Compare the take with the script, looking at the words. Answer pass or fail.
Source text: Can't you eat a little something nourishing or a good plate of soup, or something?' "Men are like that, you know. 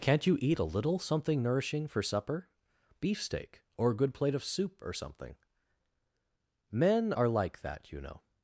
fail